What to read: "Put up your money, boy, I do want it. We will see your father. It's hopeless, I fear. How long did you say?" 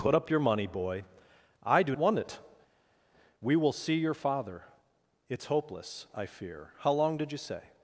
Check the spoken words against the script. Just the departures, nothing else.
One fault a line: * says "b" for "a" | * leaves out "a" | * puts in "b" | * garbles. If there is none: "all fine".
all fine